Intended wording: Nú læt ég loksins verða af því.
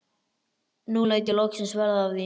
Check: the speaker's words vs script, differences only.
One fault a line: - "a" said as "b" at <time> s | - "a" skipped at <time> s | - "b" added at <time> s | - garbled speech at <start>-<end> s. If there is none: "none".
none